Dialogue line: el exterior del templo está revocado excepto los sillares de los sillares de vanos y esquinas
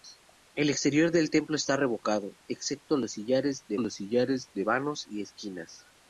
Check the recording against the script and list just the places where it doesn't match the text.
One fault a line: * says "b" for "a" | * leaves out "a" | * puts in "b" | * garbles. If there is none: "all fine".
all fine